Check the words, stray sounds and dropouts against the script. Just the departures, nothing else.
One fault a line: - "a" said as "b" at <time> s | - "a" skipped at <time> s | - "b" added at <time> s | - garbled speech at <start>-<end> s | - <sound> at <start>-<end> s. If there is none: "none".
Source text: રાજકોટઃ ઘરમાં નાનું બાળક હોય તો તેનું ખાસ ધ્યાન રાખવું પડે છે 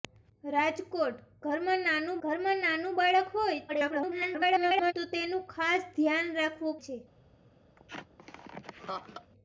- "ઘરમાં નાનું" added at 2.2 s
- garbled speech at 3.7-4.9 s
- "પડે" skipped at 6.8 s
- laugh at 7.8-9.3 s